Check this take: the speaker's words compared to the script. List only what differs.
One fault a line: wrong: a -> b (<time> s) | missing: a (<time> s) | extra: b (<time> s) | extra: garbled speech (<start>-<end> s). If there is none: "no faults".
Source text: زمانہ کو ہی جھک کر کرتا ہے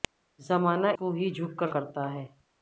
no faults